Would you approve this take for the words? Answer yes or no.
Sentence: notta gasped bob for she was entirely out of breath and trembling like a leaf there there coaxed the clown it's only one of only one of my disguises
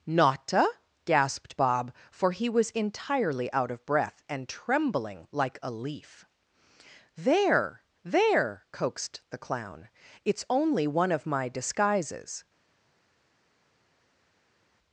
no